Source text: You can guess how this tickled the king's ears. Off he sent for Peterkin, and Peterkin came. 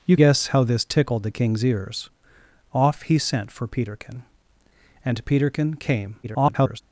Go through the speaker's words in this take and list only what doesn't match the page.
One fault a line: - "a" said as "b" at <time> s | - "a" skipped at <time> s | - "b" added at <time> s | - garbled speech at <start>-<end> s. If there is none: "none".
- "can" skipped at 0.2 s
- garbled speech at 6.2-6.8 s